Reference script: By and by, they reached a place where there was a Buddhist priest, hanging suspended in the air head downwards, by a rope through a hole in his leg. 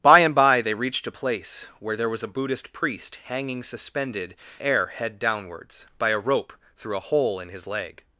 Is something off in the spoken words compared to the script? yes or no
yes